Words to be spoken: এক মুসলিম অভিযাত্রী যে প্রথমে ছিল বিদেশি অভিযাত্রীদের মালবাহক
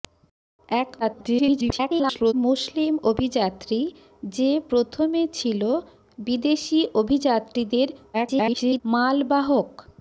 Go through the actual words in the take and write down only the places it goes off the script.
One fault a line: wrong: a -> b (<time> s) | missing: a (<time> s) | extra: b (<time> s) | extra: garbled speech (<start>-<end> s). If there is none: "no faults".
extra: garbled speech (1.0-2.3 s)
extra: garbled speech (8.1-8.8 s)